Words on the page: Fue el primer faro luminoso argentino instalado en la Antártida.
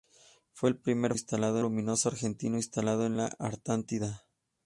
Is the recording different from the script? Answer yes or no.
yes